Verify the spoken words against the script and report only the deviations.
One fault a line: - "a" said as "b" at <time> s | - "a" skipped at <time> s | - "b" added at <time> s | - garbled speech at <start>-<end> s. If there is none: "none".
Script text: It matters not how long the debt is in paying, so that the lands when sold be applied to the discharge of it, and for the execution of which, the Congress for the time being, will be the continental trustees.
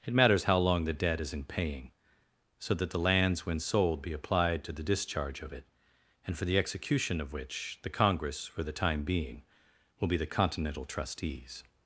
- "not" skipped at 0.5 s